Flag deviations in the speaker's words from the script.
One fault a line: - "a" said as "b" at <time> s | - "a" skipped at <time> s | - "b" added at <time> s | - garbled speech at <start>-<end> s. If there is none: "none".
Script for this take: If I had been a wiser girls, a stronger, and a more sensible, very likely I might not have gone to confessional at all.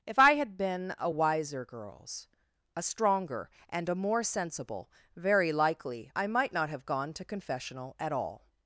none